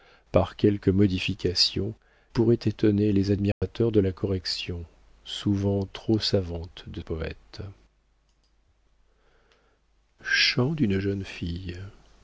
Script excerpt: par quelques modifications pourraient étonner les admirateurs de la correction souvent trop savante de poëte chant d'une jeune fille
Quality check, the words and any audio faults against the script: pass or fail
fail